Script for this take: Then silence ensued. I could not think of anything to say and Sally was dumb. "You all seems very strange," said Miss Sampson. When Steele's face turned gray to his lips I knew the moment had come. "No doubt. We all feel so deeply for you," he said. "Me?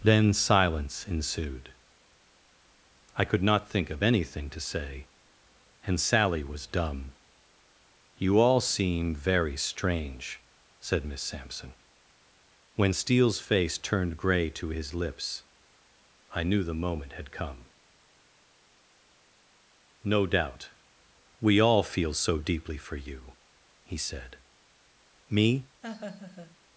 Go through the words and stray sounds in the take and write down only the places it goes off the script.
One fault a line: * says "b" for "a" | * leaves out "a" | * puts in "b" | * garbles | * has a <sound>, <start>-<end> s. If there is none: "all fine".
* says "seem" for "seems"
* has a laugh, 25.8-26.6 s